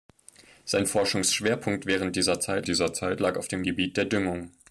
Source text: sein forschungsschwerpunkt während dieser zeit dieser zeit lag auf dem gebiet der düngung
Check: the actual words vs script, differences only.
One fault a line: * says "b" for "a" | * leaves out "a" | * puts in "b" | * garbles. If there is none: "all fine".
all fine